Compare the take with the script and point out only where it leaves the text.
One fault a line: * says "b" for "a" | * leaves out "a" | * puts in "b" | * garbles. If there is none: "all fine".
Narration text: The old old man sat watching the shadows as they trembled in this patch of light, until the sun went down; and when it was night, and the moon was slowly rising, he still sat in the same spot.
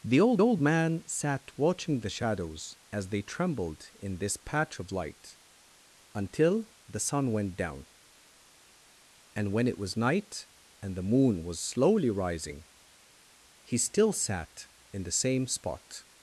all fine